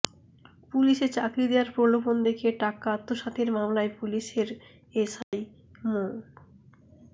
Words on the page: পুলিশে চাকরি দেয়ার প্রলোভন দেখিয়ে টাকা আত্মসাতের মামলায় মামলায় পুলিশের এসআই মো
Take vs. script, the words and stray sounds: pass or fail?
fail